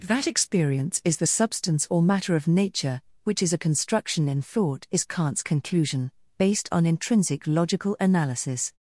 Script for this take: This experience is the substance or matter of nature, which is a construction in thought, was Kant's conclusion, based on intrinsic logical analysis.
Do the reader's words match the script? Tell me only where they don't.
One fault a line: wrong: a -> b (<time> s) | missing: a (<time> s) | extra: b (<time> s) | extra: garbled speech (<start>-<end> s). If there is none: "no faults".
wrong: This -> That (0.1 s)
wrong: was -> is (4.9 s)